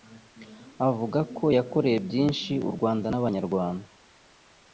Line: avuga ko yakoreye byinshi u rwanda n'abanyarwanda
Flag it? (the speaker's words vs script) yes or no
no